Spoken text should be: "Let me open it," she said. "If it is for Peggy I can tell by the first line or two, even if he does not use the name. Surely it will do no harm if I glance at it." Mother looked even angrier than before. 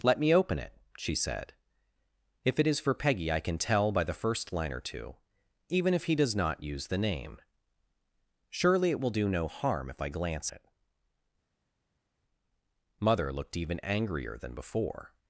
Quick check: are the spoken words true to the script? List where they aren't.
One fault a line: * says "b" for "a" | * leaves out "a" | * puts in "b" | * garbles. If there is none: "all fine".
* leaves out "at"